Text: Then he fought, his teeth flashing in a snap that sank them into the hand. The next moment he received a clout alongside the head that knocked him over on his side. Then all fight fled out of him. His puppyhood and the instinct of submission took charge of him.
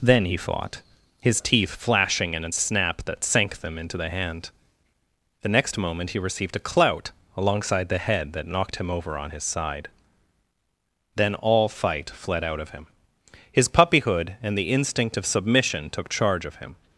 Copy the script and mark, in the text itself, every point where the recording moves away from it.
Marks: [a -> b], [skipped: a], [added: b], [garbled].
Then he fought, his teeth flashing in a snap that sank them into the hand. The next moment he received a clout alongside the head that knocked him over on his side. Then all fight fled out of him. His puppyhood and the instinct of submission took charge of him.